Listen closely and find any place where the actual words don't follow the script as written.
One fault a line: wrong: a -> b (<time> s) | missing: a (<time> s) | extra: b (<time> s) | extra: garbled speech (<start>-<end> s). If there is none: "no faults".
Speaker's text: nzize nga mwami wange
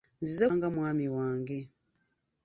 no faults